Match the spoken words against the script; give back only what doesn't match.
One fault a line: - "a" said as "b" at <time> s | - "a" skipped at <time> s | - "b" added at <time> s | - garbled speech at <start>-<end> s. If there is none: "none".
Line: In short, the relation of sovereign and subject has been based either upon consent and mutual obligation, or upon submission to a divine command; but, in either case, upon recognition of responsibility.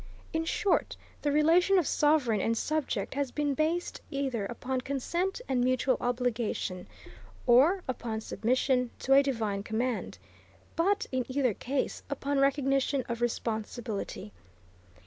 none